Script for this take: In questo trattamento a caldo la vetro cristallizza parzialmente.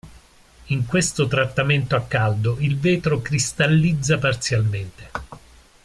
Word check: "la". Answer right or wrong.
wrong